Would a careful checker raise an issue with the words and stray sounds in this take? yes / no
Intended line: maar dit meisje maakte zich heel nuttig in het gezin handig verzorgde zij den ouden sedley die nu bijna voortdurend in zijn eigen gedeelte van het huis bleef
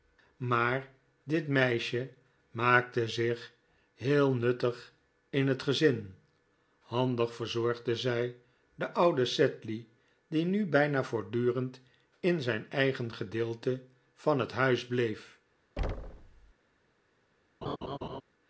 yes